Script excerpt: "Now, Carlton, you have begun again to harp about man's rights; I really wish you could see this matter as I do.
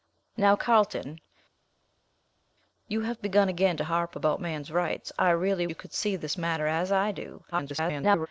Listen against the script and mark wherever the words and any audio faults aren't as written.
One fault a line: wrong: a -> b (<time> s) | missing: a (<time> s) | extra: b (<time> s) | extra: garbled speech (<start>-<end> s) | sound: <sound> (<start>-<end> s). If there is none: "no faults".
missing: wish (5.7 s)
extra: garbled speech (7.5-8.3 s)